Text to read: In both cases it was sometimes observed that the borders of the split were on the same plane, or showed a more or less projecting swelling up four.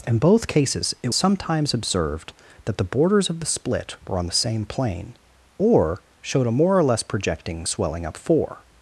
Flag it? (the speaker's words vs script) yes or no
yes